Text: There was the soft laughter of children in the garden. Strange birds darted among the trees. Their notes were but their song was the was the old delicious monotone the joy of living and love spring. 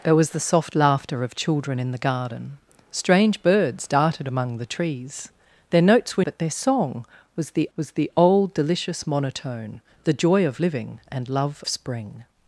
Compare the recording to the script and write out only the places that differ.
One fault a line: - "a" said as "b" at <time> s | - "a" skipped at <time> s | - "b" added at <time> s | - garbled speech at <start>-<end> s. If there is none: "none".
none